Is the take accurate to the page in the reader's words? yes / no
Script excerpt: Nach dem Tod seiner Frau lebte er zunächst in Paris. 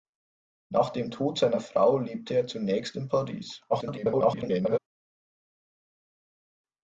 no